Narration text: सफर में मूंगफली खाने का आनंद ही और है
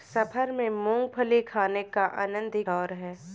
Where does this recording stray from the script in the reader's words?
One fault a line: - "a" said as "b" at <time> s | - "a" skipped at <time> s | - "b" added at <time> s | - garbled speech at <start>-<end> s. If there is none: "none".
none